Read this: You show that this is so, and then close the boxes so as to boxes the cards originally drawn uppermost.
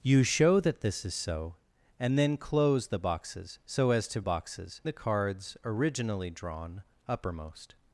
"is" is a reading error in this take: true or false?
false